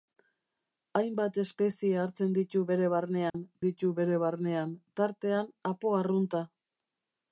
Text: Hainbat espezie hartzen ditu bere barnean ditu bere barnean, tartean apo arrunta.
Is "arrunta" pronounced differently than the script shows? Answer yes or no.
no